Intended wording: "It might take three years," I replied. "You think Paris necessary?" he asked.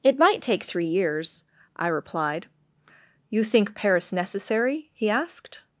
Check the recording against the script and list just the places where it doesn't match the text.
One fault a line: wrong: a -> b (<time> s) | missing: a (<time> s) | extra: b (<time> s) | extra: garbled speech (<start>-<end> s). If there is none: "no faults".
no faults